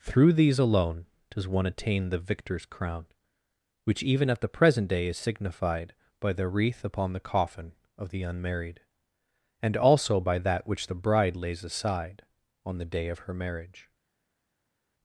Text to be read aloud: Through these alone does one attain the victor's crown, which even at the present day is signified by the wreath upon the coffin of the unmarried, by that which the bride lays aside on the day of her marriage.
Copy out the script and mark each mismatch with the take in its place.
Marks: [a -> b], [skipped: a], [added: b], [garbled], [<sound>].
Through these alone does one attain the victor's crown, which even at the present day is signified by the wreath upon the coffin of the unmarried, [added: and also] by that which the bride lays aside on the day of her marriage.